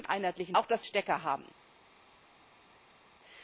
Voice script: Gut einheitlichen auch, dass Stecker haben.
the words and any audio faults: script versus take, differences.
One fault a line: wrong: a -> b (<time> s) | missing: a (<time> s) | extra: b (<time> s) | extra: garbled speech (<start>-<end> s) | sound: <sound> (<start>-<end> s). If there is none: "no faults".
no faults